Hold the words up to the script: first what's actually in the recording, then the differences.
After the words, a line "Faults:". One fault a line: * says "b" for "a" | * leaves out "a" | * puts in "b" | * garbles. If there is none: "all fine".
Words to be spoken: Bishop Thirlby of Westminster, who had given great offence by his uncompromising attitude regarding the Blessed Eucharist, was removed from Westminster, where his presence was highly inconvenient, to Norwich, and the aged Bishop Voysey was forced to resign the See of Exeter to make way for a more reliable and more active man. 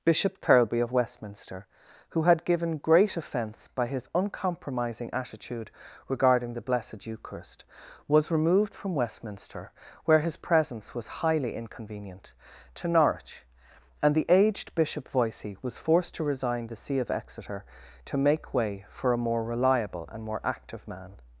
Bishop Thirlby of Westminster, who had given great offence by his uncompromising attitude regarding the Blessed Eucharist, was removed from Westminster, where his presence was highly inconvenient, to Norwich, and the aged Bishop Voysey was forced to resign the See of Exeter to make way for a more reliable and more active man.
Faults:
all fine